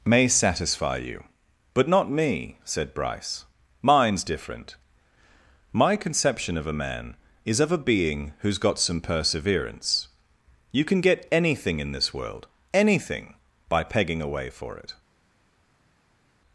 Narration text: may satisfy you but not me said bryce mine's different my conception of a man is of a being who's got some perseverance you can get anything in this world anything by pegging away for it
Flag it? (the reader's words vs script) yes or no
no